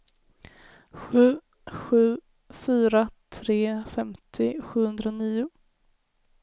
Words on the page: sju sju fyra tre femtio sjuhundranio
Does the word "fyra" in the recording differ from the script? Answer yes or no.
no